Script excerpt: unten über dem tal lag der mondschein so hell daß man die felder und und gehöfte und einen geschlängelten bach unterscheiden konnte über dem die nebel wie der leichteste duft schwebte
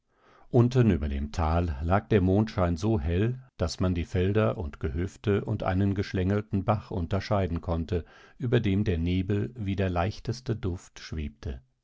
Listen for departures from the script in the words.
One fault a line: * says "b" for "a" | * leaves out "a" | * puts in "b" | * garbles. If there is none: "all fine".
* leaves out "und"
* says "der" for "die"